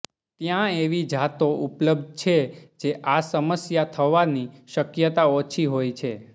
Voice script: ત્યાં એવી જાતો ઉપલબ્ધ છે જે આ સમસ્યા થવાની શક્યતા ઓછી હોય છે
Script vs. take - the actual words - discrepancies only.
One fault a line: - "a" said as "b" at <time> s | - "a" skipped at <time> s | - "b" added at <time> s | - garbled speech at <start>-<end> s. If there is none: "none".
none